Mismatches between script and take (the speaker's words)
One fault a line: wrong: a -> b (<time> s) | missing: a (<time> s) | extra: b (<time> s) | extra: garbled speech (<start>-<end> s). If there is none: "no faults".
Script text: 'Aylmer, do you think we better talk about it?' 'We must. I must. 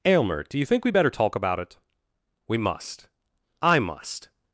no faults